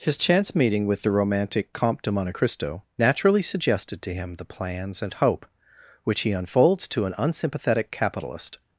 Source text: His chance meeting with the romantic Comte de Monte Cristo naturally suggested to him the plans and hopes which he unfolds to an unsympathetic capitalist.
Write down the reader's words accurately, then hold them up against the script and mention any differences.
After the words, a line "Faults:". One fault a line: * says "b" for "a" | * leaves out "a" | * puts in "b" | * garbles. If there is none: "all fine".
His chance meeting with the romantic Comte de Monte Cristo naturally suggested to him the plans and hope which he unfolds to an unsympathetic capitalist.
Faults:
* says "hope" for "hopes"